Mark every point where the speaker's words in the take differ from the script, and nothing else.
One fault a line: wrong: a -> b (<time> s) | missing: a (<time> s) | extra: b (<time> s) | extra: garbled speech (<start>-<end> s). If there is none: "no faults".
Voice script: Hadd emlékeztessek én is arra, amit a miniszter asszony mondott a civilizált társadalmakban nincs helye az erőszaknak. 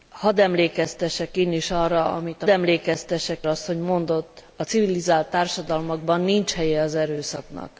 wrong: miniszter -> emlékeztessek (2.5 s)